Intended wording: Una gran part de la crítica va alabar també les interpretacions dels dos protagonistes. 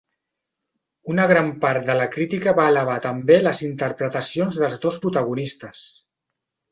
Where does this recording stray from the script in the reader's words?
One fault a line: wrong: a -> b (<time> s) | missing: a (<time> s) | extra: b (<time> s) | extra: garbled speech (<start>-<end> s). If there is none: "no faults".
no faults